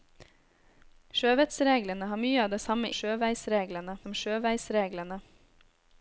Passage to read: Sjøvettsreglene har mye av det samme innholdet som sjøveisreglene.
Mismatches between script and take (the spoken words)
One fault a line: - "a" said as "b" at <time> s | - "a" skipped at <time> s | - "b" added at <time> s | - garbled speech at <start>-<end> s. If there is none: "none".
- "innholdet" said as "sjøveisreglene" at 3.0 s